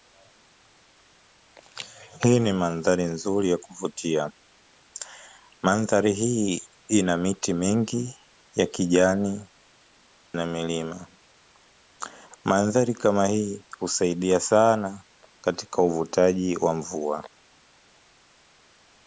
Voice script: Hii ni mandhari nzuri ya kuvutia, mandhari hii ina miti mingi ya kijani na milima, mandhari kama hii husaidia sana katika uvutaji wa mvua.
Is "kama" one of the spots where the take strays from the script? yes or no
no